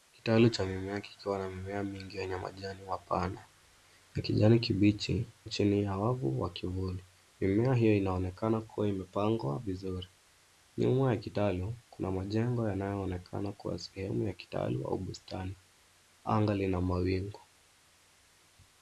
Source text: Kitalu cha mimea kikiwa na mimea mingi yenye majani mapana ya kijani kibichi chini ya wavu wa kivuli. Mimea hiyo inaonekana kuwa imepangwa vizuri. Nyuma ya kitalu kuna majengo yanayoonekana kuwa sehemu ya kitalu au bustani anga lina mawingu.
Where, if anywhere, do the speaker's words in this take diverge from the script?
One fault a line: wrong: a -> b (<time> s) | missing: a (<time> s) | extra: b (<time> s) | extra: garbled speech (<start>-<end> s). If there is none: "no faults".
no faults